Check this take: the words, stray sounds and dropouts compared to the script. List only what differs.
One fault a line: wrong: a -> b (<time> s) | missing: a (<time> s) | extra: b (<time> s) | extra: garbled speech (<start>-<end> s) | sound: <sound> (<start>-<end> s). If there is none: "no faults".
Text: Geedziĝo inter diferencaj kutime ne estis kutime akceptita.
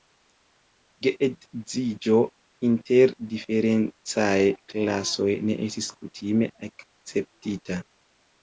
wrong: kutime -> klasoj (4.7 s)